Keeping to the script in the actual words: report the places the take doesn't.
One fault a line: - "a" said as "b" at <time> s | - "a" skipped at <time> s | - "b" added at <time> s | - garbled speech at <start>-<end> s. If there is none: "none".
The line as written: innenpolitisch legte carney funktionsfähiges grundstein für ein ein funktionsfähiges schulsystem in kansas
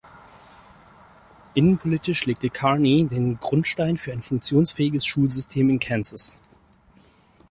- "funktionsfähiges" said as "den" at 3.1 s
- "ein" skipped at 4.2 s